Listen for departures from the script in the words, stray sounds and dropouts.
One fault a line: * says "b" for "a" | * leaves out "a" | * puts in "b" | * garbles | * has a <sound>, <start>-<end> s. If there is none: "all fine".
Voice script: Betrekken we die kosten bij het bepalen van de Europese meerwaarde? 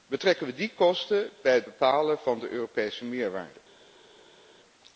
all fine